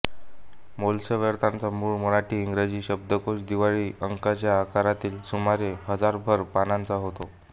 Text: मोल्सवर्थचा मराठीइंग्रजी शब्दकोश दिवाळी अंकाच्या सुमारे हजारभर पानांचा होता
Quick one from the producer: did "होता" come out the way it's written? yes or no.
yes